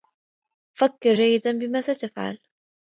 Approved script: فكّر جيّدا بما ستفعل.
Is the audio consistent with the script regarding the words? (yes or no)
yes